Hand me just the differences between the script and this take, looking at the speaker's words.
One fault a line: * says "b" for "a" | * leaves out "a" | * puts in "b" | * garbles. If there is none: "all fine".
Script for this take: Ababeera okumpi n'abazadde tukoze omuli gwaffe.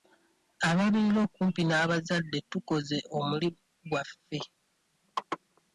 all fine